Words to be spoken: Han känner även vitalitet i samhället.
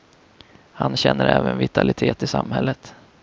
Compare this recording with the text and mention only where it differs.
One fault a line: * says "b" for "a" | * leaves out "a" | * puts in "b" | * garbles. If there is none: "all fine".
all fine